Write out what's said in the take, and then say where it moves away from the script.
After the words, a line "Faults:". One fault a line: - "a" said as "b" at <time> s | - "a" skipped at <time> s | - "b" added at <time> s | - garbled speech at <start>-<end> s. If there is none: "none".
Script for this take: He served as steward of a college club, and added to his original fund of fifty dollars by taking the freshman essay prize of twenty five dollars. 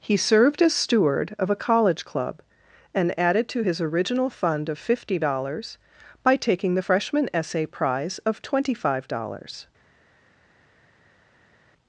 He served as steward of a college club, and added to his original fund of fifty dollars by taking the freshman essay prize of twenty five dollars.
Faults:
none